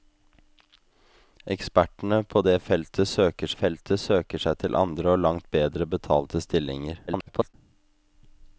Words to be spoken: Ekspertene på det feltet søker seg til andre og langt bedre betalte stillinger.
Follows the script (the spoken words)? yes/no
no